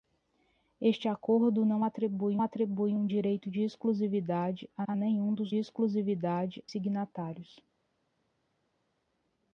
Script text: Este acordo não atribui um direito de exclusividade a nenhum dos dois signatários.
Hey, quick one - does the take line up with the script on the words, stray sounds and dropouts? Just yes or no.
no